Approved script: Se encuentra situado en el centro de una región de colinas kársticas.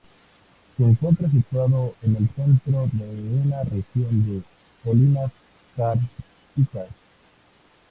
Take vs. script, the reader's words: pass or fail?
pass